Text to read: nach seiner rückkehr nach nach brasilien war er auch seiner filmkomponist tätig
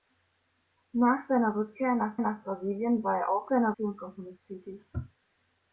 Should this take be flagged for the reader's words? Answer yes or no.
no